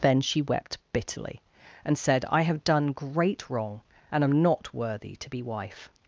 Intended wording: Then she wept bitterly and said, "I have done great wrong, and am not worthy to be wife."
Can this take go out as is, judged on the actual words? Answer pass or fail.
pass